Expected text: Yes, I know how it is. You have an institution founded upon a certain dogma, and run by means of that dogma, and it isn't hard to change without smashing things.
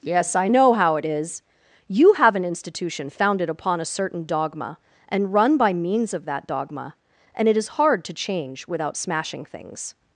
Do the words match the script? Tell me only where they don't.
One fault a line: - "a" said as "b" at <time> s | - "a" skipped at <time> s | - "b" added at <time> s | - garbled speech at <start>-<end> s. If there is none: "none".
- "isn't" said as "is" at 7.5 s